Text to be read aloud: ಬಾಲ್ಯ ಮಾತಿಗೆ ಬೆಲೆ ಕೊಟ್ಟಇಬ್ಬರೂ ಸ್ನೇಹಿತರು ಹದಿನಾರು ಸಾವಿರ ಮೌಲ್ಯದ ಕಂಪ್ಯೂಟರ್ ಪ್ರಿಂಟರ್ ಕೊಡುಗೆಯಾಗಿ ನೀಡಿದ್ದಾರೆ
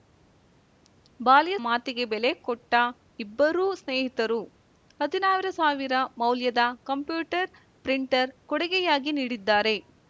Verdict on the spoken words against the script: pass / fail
pass